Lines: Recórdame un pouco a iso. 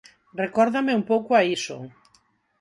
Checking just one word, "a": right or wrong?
right